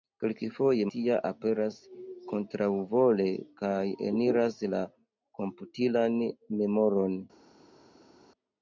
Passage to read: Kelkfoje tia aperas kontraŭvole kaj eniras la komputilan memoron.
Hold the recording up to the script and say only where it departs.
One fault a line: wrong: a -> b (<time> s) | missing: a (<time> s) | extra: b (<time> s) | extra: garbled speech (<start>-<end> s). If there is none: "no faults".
no faults